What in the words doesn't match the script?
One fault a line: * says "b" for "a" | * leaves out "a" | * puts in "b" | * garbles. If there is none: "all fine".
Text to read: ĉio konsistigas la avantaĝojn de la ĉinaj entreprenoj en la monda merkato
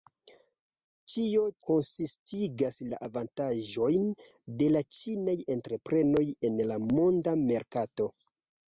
all fine